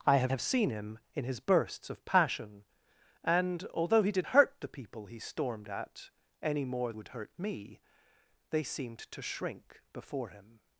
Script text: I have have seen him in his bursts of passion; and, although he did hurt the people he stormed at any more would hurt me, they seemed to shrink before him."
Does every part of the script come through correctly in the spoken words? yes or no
yes